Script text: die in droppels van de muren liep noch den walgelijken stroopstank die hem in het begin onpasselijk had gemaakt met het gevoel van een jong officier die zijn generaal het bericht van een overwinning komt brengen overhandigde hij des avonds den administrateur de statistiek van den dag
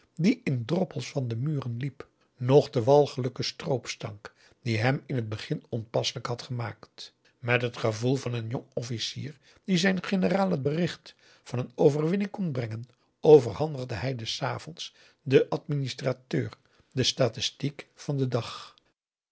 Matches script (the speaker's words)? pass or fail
pass